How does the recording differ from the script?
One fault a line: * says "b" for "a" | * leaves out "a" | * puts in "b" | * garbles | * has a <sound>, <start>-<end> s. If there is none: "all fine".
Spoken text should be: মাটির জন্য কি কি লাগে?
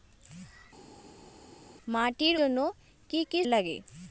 all fine